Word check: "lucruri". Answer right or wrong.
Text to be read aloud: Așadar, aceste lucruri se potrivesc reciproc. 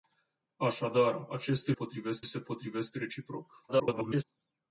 wrong